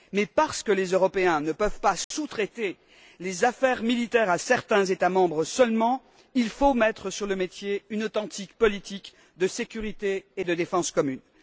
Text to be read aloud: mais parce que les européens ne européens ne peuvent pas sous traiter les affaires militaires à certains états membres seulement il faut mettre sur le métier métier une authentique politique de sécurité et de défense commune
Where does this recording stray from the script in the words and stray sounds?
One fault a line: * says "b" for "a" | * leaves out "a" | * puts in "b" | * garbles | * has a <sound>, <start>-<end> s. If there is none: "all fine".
* leaves out "européens ne"
* has a dropout, 2.0-2.1 s
* leaves out "métier"